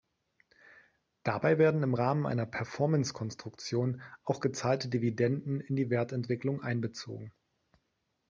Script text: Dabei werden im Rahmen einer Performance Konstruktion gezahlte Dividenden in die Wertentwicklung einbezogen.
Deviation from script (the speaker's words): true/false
true